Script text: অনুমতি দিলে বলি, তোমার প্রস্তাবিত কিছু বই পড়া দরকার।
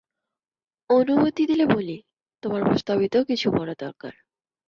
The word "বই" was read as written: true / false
false